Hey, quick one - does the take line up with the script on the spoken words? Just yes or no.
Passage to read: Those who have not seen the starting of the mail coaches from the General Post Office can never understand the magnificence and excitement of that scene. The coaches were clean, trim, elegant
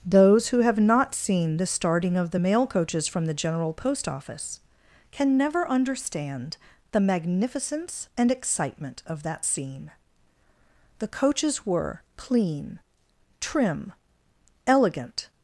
yes